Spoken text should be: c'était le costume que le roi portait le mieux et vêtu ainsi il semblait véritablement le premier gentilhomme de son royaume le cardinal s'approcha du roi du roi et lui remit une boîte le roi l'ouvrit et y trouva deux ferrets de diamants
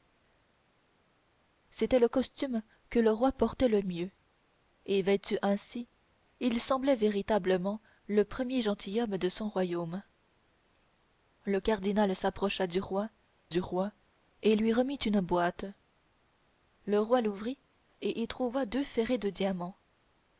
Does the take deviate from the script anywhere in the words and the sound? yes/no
no